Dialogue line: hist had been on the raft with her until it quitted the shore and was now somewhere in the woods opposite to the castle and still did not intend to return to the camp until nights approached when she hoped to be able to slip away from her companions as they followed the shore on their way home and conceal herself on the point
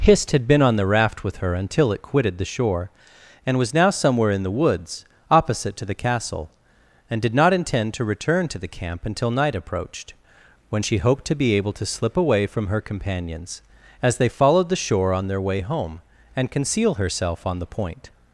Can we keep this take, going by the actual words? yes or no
no